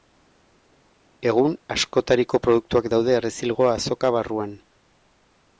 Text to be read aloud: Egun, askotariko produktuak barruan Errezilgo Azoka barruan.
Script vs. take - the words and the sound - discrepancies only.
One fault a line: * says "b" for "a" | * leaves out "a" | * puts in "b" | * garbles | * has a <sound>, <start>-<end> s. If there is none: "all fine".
* says "daude" for "barruan"